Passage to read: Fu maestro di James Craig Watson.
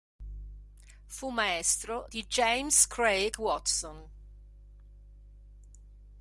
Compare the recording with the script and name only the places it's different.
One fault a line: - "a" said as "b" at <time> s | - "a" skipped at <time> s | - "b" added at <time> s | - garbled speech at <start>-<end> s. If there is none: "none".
none